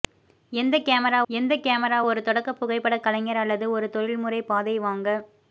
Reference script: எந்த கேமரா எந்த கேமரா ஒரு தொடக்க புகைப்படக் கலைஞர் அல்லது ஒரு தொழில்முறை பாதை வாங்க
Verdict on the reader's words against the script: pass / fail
pass